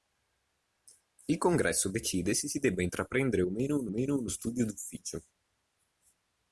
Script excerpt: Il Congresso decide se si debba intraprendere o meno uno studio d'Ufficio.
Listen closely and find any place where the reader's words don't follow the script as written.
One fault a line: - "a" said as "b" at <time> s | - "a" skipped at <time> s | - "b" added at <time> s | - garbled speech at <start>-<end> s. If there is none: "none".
- "meno uno" added at 3.9 s